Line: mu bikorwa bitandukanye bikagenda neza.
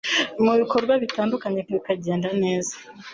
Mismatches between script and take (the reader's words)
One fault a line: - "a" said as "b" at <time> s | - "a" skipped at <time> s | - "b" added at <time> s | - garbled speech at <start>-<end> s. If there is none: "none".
none